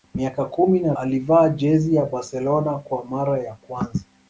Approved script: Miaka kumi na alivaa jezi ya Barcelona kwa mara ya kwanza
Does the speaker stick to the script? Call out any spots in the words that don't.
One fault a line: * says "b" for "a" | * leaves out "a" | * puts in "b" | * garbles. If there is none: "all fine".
all fine